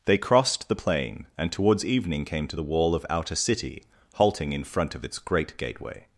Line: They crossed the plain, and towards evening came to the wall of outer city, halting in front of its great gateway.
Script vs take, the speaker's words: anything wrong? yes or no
no